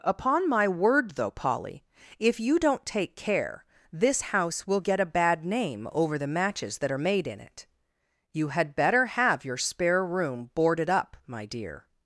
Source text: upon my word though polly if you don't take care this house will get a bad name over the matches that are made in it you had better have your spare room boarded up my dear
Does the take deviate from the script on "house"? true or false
false